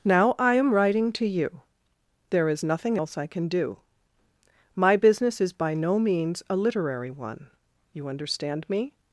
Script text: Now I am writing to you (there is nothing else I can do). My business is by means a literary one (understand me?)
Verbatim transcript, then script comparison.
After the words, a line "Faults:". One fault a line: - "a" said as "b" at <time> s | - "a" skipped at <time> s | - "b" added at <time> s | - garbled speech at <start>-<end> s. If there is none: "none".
Now I am writing to you (there is nothing else I can do). My business is by no means a literary one (you understand me?)
Faults:
- "no" added at 5.8 s
- "you" added at 7.9 s